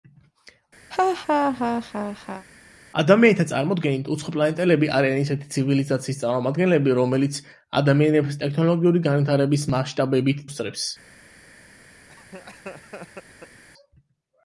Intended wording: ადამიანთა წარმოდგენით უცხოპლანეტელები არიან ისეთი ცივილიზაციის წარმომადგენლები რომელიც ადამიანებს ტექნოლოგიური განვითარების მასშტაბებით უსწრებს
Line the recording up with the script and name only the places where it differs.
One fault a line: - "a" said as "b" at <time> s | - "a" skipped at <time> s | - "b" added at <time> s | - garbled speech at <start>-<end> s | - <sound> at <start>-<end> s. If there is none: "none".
- laugh at 0.9-2.5 s
- laugh at 12.1-13.6 s